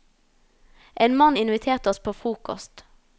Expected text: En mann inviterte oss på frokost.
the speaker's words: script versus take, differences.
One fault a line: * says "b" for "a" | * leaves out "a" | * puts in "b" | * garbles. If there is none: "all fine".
all fine